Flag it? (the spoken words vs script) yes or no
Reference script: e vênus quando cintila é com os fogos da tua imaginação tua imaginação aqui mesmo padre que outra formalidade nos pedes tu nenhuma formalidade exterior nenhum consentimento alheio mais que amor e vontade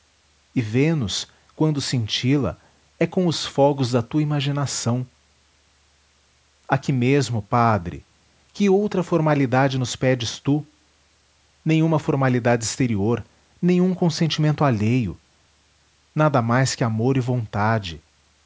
yes